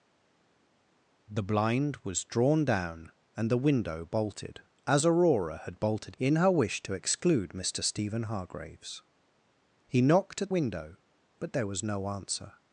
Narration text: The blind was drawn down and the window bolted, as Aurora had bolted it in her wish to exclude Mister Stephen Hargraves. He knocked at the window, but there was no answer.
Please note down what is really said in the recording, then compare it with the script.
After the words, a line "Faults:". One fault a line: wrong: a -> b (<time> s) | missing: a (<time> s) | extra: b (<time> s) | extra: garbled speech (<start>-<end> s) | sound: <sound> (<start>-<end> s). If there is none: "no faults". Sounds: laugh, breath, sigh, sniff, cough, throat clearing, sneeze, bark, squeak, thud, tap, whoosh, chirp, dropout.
The blind was drawn down and the window bolted, as Aurora had bolted in her wish to exclude Mister Stephen Hargraves. He knocked at window, but there was no answer.
Faults:
missing: it (6.2 s)
missing: the (10.5 s)